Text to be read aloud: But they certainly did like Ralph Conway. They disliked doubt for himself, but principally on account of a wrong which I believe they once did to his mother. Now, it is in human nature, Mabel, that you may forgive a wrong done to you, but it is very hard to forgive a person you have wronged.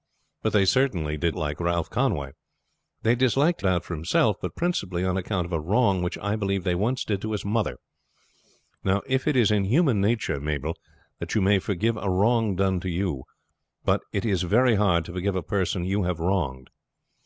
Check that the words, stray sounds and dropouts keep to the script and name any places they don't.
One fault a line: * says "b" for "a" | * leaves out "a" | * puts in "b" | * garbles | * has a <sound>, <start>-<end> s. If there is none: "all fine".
all fine